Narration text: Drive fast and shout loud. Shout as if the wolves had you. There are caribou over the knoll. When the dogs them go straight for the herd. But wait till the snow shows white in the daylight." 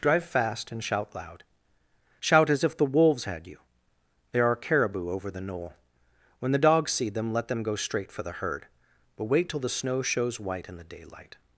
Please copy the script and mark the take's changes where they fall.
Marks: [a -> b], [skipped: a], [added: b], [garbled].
Drive fast and shout loud. Shout as if the wolves had you. There are caribou over the knoll. When the dogs [added: see them let] them go straight for the herd. But wait till the snow shows white in the daylight."